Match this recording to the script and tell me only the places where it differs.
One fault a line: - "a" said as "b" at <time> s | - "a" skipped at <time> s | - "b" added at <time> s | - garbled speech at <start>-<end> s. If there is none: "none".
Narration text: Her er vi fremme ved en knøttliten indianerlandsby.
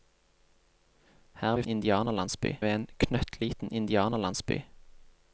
- "fremme" said as "indianerlandsby" at 1.7 s